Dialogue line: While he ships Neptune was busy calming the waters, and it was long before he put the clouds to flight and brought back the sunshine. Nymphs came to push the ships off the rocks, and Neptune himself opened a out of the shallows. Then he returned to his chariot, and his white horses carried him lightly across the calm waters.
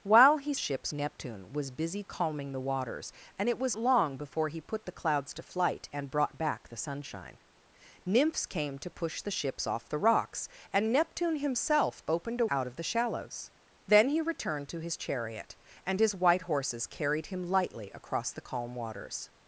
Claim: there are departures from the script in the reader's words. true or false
false